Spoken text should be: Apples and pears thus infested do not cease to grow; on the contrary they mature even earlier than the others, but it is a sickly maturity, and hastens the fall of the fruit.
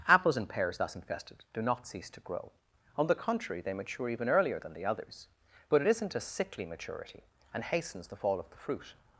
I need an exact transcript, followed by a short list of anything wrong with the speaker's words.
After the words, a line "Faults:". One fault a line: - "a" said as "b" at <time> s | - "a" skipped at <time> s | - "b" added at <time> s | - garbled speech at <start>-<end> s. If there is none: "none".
Apples and pears thus infested do not cease to grow; on the contrary they mature even earlier than the others, but it isn't a sickly maturity, and hastens the fall of the fruit.
Faults:
- "is" said as "isn't" at 5.9 s